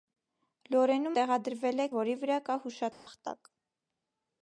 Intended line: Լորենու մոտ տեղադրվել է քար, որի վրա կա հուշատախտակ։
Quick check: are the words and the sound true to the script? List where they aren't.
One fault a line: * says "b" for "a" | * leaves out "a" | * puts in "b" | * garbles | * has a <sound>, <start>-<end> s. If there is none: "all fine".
* leaves out "մոտ"
* leaves out "քար"
* has a dropout, 2.9-3.1 s